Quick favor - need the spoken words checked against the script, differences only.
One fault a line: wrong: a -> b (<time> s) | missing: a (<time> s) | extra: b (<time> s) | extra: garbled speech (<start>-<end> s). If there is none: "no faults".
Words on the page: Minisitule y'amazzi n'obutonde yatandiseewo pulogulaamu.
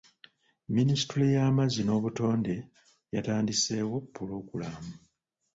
no faults